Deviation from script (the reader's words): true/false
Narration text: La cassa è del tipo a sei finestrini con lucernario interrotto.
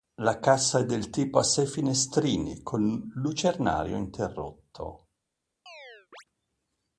false